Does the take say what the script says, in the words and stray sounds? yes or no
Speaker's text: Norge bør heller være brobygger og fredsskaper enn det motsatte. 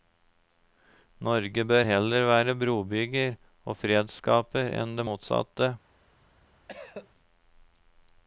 no